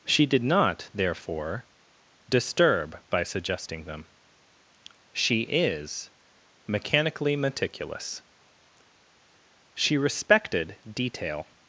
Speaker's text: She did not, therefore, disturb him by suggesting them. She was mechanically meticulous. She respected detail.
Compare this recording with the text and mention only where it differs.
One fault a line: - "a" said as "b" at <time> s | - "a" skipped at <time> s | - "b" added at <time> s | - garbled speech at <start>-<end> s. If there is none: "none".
- "him" skipped at 3.0 s
- "was" said as "is" at 5.4 s